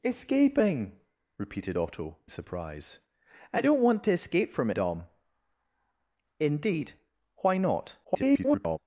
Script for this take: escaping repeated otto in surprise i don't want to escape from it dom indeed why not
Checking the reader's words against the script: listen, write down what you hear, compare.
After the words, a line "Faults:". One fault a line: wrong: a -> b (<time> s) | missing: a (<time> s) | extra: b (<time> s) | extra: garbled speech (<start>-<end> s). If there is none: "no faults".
escaping repeated otto surprise i don't want to escape from dom indeed why not [garbled]
Faults:
missing: in (2.2 s)
missing: it (4.7 s)
extra: garbled speech (8.0-8.8 s)